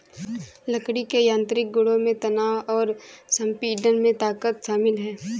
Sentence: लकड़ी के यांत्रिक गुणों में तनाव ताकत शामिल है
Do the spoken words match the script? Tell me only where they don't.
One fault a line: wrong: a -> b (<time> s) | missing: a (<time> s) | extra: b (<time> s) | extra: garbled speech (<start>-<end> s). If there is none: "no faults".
extra: और संपीड़न में (2.7 s)